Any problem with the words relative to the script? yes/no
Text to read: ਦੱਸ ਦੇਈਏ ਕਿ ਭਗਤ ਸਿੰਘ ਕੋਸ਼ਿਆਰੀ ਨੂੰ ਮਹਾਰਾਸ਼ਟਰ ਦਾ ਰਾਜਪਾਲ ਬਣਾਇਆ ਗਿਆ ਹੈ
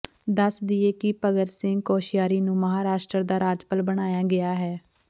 no